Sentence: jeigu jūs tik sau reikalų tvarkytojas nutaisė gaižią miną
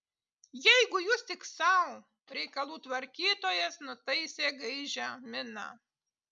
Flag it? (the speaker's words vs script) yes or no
no